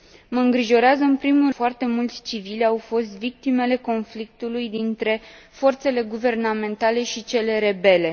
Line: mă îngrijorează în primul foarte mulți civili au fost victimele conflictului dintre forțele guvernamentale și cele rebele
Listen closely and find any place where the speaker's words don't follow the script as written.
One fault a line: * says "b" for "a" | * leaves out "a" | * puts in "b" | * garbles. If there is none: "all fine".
all fine